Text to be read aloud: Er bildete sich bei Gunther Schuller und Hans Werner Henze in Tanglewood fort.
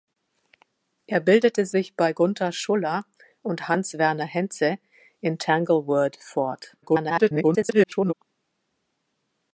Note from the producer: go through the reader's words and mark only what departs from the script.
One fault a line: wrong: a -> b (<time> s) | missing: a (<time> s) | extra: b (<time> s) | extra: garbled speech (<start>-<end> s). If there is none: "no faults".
extra: garbled speech (6.8-8.1 s)